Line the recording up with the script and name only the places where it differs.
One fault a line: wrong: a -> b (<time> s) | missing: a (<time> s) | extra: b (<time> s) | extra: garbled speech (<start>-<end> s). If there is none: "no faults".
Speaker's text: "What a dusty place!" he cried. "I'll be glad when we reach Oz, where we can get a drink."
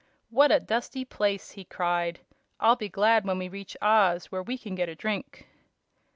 no faults